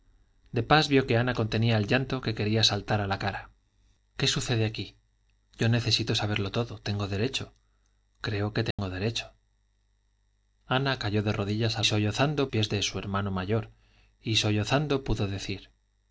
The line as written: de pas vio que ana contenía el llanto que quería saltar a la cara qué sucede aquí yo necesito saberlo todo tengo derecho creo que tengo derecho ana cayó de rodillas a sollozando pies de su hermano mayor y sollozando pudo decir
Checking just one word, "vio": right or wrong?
right